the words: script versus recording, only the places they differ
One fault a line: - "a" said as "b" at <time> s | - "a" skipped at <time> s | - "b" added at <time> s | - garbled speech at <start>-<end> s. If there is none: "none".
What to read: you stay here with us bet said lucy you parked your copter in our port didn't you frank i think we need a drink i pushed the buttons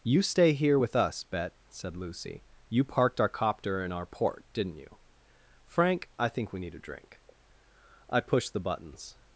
- "your" said as "our" at 3.2 s